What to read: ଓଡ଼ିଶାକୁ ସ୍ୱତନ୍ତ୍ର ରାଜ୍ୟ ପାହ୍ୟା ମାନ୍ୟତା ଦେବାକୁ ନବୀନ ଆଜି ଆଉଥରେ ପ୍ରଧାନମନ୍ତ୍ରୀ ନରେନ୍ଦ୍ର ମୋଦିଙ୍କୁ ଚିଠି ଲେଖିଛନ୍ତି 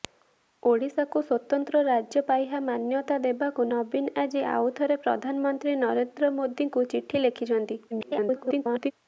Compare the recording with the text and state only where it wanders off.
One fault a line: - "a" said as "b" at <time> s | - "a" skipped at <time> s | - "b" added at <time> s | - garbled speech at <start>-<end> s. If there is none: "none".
- garbled speech at 7.9-8.9 s